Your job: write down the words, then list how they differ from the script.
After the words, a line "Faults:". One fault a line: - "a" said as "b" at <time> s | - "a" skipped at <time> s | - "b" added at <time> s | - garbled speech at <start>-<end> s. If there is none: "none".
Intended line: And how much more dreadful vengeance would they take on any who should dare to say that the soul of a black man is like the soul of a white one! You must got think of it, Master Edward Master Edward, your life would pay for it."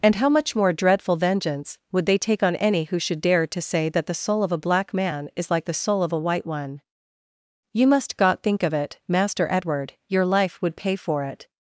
And how much more dreadful vengeance would they take on any who should dare to say that the soul of a black man is like the soul of a white one! You must got think of it, Master Edward, your life would pay for it."
Faults:
- "Master Edward" skipped at 9.9 s